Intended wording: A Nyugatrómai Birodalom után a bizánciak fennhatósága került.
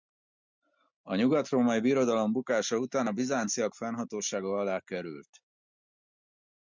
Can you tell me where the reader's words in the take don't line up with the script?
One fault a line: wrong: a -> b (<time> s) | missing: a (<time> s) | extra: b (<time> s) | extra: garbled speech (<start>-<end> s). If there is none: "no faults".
extra: bukása (2.3 s)
extra: alá (4.6 s)